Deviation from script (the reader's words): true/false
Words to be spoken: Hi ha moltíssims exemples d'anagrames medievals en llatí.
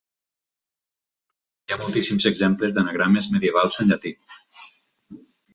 false